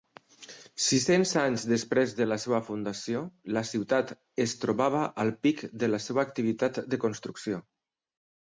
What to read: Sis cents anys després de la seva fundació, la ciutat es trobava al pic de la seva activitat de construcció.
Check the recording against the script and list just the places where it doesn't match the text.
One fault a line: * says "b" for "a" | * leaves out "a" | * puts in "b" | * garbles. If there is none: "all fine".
all fine